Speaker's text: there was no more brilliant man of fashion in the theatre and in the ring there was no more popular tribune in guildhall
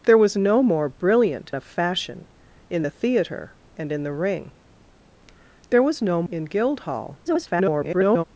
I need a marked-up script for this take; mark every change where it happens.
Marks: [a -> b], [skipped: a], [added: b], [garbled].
there was no more brilliant [skipped: man] of fashion in the theatre and in the ring there was no [skipped: more popular tribune] in guildhall [garbled]